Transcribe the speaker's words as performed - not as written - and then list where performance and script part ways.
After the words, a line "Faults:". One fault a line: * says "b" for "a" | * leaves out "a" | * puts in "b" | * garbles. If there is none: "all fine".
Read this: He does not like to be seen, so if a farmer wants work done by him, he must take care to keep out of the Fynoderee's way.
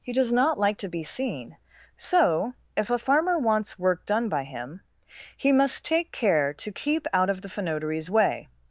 He does not like to be seen, so if a farmer wants work done by him, he must take care to keep out of the Fynoderee's way.
Faults:
all fine